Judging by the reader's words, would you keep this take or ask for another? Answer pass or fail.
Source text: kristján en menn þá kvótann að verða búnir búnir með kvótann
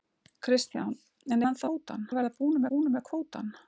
pass